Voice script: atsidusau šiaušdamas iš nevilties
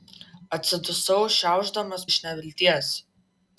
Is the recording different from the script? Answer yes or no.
no